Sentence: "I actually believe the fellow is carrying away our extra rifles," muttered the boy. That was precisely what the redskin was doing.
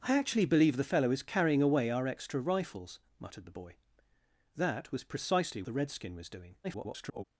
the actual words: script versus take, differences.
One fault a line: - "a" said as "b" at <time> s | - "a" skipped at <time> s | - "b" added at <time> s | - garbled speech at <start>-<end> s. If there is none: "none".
- "what" skipped at 5.6 s
- garbled speech at 6.6-7.2 s